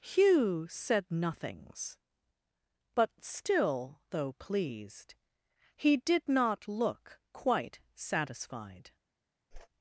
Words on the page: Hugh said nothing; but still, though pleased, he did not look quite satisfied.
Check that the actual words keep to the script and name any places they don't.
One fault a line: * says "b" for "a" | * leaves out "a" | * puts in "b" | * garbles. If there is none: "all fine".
* says "nothings" for "nothing"